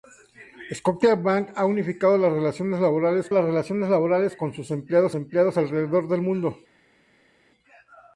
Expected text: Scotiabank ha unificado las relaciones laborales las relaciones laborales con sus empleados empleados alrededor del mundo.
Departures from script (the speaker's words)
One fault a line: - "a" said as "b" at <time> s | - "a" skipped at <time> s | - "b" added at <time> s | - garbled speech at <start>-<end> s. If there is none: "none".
none